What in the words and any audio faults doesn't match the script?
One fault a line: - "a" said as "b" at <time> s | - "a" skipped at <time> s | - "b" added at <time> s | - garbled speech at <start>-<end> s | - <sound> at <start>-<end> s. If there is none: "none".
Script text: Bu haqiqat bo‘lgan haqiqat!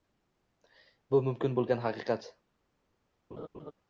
- "haqiqat" said as "mumkin" at 1.3 s
- laugh at 3.3-3.7 s